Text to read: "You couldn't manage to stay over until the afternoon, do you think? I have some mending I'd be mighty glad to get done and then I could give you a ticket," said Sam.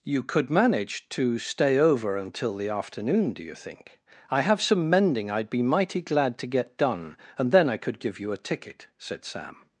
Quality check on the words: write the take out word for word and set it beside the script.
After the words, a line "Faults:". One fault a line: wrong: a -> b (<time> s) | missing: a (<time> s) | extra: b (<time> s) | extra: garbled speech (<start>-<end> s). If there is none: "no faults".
"You could manage to stay over until the afternoon, do you think? I have some mending I'd be mighty glad to get done and then I could give you a ticket," said Sam.
Faults:
wrong: couldn't -> could (0.2 s)